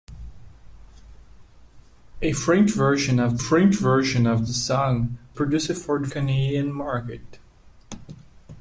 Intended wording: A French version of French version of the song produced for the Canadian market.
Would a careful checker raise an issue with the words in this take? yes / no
no